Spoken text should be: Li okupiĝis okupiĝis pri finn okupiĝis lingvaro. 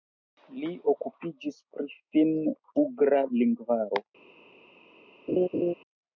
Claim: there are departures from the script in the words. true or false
true